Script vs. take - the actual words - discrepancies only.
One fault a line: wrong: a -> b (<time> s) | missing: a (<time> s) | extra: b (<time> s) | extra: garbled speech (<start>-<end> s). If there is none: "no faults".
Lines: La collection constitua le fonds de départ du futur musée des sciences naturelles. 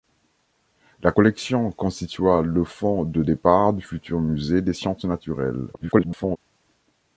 extra: garbled speech (5.7-6.4 s)